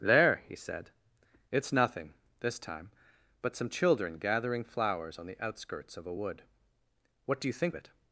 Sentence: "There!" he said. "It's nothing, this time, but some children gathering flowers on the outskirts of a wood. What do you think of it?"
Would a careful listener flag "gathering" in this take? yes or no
no